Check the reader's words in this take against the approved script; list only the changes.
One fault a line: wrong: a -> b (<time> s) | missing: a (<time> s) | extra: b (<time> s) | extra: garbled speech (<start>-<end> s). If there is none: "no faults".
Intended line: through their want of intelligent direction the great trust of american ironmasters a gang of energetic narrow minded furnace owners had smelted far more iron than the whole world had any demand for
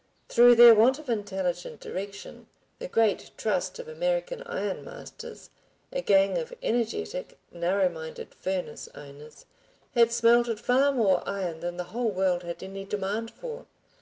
no faults